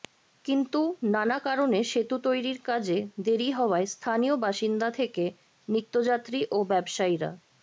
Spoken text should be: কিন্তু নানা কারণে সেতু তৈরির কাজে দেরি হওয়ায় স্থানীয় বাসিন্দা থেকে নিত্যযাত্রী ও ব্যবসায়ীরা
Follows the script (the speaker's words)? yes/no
yes